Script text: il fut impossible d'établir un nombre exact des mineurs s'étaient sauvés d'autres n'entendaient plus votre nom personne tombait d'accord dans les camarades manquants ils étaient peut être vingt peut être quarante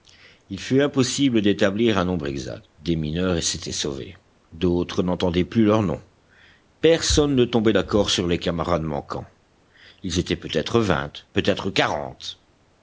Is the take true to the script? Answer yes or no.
no